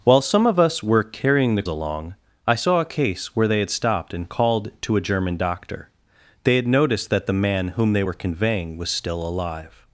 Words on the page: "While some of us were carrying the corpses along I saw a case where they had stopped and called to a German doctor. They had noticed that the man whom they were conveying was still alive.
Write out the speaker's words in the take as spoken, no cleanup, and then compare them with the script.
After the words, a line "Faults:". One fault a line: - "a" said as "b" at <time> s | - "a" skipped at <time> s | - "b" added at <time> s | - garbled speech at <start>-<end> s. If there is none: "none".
"While some of us were carrying the along I saw a case where they had stopped and called to a German doctor. They had noticed that the man whom they were conveying was still alive.
Faults:
- "corpses" skipped at 1.6 s